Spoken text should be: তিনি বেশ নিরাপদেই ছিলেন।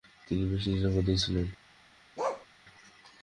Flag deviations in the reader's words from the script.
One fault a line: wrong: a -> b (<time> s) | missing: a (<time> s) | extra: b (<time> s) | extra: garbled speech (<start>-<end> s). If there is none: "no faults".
no faults